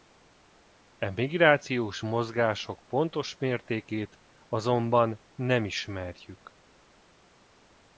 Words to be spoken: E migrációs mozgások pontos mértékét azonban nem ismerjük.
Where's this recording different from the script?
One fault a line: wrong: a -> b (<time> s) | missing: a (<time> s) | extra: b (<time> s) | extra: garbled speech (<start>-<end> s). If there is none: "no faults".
no faults